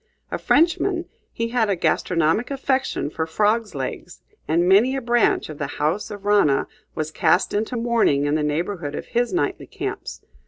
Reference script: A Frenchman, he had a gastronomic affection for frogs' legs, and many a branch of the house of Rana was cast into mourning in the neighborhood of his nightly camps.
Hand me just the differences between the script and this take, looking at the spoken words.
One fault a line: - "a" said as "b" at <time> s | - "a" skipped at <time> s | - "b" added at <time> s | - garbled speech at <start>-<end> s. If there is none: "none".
none